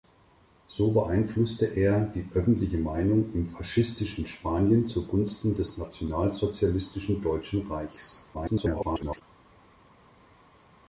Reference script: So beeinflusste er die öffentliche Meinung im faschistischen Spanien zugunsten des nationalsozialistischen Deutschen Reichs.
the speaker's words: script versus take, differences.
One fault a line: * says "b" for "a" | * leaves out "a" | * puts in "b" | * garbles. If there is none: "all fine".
* garbles